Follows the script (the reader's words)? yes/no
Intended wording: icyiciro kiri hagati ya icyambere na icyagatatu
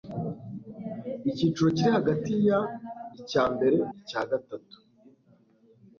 no